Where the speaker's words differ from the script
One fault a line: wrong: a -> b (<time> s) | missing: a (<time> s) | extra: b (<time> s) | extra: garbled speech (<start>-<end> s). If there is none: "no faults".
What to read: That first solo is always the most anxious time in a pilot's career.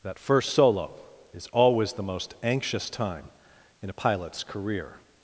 no faults